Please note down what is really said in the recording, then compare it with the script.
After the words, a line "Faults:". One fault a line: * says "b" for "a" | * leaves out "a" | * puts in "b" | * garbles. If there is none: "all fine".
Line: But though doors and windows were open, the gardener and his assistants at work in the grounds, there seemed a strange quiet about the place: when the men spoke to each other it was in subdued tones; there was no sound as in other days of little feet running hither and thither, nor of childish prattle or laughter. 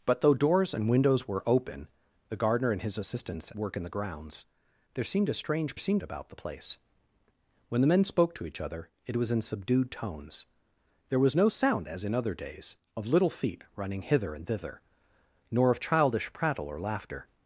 But though doors and windows were open, the gardener and his assistants work in the grounds, there seemed a strange seemed about the place: when the men spoke to each other it was in subdued tones; there was no sound as in other days of little feet running hither and thither, nor of childish prattle or laughter.
Faults:
* leaves out "at"
* says "seemed" for "quiet"